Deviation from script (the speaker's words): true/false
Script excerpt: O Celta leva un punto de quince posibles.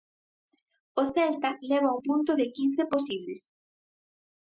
false